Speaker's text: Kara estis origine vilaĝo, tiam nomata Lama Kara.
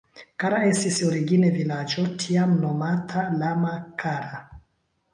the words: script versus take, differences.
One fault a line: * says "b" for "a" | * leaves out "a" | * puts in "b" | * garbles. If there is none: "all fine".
all fine